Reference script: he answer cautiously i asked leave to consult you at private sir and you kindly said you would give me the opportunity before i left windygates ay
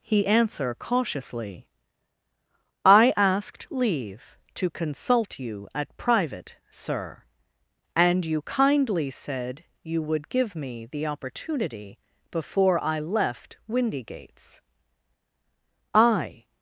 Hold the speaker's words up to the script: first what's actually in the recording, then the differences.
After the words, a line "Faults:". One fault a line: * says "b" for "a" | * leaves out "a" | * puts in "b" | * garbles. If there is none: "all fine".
he answer cautiously i asked leave to consult you at private sir and you kindly said you would give me the opportunity before i left windygates ay
Faults:
all fine